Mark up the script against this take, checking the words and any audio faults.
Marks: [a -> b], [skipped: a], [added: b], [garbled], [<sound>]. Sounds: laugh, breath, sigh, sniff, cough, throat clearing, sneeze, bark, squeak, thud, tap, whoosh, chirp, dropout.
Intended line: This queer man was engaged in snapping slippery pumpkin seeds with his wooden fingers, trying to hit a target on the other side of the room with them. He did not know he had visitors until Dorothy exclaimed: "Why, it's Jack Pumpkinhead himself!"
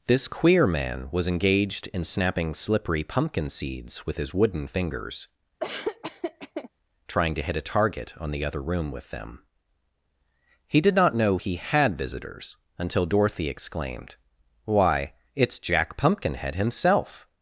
This queer man was engaged in snapping slippery pumpkin seeds with his wooden fingers, [laugh] trying to hit a target on the other [skipped: side of the] room with them. He did not know he had visitors until Dorothy exclaimed: "Why, it's Jack Pumpkinhead himself!"